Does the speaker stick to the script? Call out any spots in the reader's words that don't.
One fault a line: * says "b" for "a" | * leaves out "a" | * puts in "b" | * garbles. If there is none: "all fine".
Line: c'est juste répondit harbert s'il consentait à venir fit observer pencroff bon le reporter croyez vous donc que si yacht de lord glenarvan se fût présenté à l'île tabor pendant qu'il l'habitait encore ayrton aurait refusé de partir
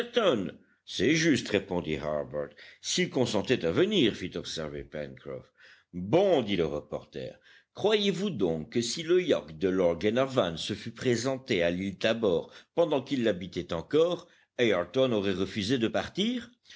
* puts in "dit"
* puts in "le"